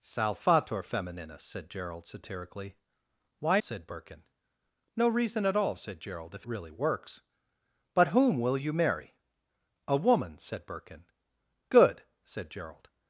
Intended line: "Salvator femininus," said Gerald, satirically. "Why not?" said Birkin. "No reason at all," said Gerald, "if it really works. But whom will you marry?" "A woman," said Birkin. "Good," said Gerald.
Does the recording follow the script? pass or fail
fail